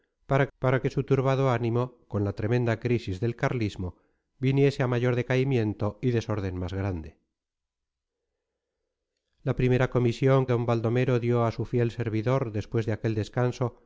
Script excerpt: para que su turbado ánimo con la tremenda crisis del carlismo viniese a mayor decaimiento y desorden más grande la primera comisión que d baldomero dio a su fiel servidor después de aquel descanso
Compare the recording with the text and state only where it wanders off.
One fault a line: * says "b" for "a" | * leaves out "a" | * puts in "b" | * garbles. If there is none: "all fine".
* puts in "para"
* leaves out "que"